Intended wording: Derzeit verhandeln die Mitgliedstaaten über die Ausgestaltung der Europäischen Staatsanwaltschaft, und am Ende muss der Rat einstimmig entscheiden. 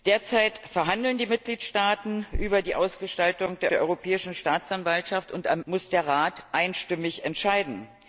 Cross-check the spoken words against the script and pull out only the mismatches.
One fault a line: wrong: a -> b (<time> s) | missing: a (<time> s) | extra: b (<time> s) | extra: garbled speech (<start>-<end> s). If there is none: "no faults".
extra: der (3.7 s)
missing: Ende (5.6 s)